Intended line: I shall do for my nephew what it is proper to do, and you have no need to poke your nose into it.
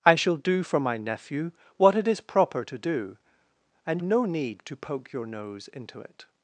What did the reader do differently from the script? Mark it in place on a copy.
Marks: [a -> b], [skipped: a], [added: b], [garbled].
I shall do for my nephew what it is proper to do, and [skipped: you have] no need to poke your nose into it.